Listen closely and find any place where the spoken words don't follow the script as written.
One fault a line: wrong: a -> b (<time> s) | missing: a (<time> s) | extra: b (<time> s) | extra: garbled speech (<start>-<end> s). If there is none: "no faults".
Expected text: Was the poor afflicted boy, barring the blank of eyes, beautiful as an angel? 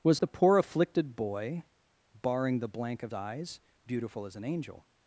no faults